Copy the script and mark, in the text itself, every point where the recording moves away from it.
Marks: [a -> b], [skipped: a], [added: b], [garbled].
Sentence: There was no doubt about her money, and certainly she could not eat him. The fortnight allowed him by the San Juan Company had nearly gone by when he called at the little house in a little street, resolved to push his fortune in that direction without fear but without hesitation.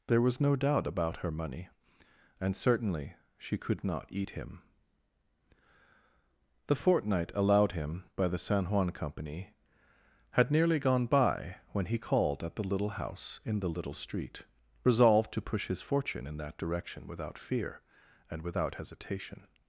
There was no doubt about her money, and certainly she could not eat him. The fortnight allowed him by the San Juan Company had nearly gone by when he called at the little house in [a -> the] little street, resolved to push his fortune in that direction without fear [but -> and] without hesitation.